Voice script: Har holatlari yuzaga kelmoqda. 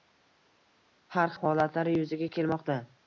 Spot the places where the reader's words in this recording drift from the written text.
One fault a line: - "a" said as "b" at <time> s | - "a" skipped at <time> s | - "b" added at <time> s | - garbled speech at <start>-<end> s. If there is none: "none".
none